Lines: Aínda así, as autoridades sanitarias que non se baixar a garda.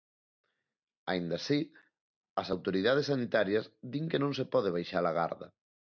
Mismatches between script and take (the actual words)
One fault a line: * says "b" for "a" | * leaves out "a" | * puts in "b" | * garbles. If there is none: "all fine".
* puts in "din"
* puts in "pode"